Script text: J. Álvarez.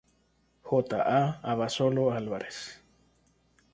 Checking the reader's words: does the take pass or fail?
fail